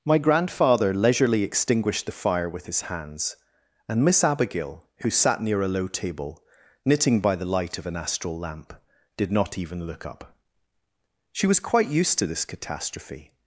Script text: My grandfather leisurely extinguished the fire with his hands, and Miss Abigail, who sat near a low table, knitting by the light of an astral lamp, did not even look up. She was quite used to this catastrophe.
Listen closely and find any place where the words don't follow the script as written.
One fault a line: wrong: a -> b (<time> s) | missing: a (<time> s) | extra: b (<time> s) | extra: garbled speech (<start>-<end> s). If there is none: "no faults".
no faults